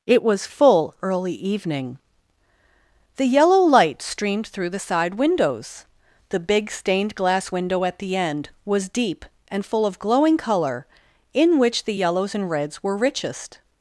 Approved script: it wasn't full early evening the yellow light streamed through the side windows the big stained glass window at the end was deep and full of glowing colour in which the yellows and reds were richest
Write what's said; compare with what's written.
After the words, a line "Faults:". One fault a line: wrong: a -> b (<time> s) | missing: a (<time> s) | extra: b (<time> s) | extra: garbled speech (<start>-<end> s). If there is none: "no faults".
it was full early evening the yellow light streamed through the side windows the big stained glass window at the end was deep and full of glowing colour in which the yellows and reds were richest
Faults:
wrong: wasn't -> was (0.2 s)